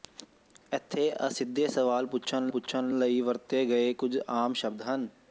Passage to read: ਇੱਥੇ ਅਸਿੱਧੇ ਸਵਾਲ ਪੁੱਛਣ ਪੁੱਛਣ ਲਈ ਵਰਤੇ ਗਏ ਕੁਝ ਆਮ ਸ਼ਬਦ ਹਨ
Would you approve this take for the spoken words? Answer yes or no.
yes